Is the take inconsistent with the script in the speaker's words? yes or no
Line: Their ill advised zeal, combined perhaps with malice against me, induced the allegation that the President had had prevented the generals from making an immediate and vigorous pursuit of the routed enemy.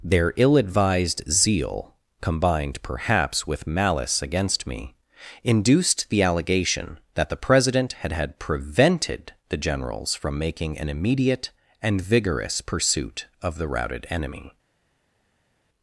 no